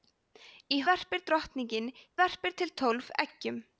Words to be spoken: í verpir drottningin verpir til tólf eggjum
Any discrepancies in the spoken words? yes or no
no